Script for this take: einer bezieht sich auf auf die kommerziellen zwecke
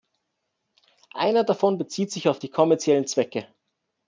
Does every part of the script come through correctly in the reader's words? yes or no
no